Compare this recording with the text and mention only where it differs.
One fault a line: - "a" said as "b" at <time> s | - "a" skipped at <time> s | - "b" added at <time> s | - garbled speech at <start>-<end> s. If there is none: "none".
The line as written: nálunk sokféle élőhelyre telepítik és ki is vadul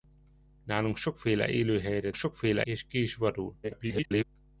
- "telepítik" said as "sokféle" at 2.1 s
- garbled speech at 3.6-4.2 s